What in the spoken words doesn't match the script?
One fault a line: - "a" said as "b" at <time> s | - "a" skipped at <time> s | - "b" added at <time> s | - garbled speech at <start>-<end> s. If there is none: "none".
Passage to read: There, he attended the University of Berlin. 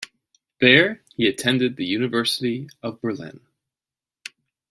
none